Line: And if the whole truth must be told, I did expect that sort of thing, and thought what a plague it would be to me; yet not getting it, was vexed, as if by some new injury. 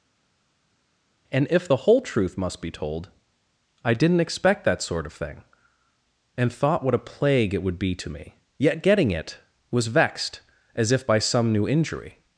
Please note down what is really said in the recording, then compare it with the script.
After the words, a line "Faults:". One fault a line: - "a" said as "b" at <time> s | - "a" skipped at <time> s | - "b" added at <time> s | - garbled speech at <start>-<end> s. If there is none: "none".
And if the whole truth must be told, I didn't expect that sort of thing, and thought what a plague it would be to me; yet getting it, was vexed, as if by some new injury.
Faults:
- "did" said as "didn't" at 3.9 s
- "not" skipped at 8.8 s